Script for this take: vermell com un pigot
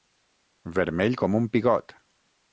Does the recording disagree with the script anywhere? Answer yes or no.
no